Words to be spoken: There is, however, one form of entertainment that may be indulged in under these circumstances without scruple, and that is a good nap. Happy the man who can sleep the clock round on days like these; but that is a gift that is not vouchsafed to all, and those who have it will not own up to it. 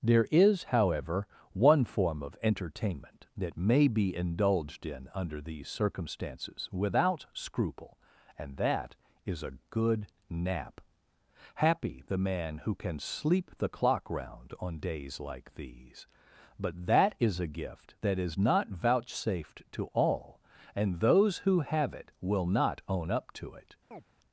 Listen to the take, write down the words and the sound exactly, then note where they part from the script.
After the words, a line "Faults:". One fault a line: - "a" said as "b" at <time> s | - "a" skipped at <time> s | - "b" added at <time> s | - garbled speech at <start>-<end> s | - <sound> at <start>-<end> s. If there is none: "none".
There is, however, one form of entertainment that may be indulged in under these circumstances without scruple, and that is a good nap. Happy the man who can sleep the clock round on days like these; but that is a gift that is not vouchsafed to all, and those who have it will not own up to it.
Faults:
- chirp at 23.9-24.0 s